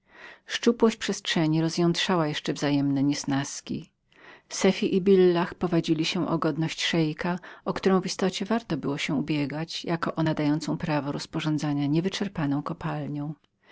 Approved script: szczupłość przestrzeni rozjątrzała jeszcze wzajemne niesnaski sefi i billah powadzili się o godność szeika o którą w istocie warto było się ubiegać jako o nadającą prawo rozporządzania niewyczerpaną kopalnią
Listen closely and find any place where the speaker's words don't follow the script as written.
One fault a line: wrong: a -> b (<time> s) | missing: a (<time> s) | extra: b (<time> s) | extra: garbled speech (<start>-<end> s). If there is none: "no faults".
no faults